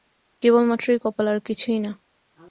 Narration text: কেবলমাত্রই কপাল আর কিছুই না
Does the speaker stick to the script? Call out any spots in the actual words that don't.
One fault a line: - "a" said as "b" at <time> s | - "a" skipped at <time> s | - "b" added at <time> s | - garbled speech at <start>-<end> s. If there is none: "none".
none